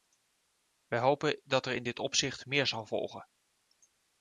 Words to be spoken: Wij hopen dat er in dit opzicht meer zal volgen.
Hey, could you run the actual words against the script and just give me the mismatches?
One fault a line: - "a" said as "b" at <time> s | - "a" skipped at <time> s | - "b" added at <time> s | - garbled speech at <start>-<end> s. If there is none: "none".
none